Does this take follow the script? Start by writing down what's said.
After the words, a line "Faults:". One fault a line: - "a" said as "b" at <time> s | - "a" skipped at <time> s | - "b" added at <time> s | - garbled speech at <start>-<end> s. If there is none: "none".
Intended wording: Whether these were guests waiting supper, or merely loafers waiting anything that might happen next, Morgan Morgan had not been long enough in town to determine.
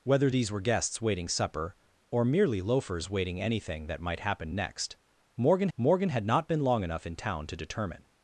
Whether these were guests waiting supper, or merely loafers waiting anything that might happen next, Morgan Morgan had not been long enough in town to determine.
Faults:
none